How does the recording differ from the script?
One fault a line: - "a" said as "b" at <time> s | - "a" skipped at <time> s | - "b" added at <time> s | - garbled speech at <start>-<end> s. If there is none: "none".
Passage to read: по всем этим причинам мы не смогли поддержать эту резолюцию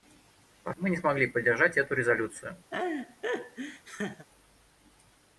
- "всем этим причинам" skipped at 0.7 s